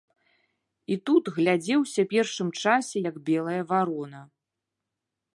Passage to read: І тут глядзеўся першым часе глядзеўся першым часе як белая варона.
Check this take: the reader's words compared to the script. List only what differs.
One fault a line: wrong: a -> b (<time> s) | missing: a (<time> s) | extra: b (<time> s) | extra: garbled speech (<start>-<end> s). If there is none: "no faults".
missing: глядзеўся першым часе (3.0 s)